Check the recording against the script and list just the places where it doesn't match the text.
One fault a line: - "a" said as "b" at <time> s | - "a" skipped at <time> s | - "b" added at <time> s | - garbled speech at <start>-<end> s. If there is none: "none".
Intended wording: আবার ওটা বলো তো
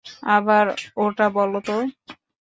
none